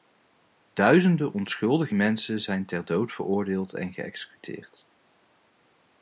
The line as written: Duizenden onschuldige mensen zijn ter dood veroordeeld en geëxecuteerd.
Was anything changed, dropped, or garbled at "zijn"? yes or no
no